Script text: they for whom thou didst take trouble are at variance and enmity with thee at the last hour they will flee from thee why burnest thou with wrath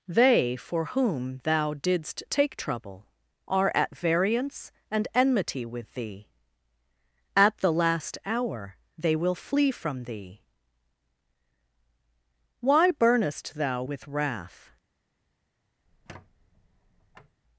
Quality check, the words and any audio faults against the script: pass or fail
fail